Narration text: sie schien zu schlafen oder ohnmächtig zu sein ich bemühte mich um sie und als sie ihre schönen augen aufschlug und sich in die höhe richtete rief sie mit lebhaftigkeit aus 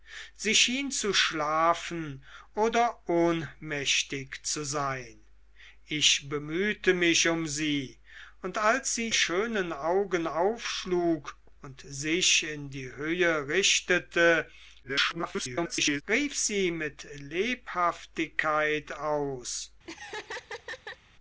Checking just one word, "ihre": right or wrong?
wrong